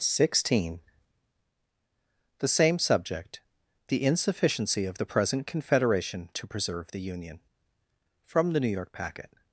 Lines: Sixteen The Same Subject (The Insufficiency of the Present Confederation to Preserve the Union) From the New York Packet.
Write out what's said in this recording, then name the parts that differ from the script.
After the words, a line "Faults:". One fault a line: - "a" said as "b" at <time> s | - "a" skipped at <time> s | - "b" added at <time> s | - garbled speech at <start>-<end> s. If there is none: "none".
Sixteen The Same Subject (The Insufficiency of the Present Confederation to Preserve the Union) From the New York Packet.
Faults:
none